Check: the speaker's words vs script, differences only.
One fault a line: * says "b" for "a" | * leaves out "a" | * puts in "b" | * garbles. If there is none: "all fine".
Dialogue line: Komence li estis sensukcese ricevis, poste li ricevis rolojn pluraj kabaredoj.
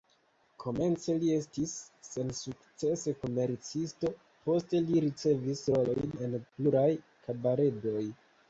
* says "komercisto" for "ricevis"
* puts in "en"